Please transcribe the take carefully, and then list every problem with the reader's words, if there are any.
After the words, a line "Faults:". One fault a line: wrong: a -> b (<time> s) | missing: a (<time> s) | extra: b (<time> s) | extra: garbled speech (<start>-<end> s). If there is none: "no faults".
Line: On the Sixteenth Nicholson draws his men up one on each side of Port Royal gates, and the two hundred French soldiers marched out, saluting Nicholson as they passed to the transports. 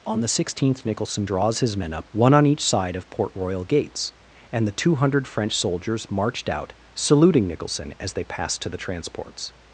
On the Sixteenth Nicholson draws his men up one on each side of Port Royal gates, and the two hundred French soldiers marched out, saluting Nicholson as they passed to the transports.
Faults:
no faults